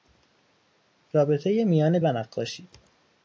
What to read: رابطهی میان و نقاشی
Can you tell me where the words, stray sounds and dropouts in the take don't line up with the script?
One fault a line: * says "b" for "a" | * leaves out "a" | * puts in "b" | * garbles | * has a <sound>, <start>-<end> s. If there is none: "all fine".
all fine